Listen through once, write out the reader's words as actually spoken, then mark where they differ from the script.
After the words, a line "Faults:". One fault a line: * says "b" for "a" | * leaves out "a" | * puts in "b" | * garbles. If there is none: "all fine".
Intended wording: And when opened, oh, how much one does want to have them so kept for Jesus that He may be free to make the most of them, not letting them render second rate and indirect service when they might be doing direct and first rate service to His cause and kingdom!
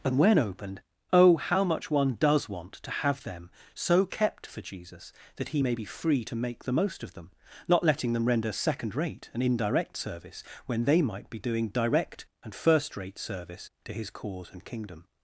And when opened, oh, how much one does want to have them so kept for Jesus that He may be free to make the most of them, not letting them render second rate and indirect service when they might be doing direct and first rate service to His cause and kingdom!
Faults:
all fine